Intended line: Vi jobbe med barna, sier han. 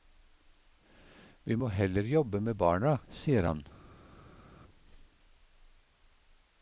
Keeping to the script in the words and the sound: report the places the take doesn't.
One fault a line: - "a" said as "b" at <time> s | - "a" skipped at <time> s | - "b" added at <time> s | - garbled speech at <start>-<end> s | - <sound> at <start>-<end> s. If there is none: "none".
- "må heller" added at 1.6 s